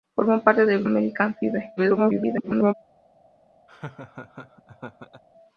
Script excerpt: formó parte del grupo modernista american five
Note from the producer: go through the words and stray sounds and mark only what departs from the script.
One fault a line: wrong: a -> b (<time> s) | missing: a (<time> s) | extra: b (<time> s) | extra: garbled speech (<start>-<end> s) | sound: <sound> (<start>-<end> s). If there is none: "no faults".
missing: grupo modernista (0.9 s)
extra: garbled speech (1.8-2.7 s)
sound: laugh (3.7-5.2 s)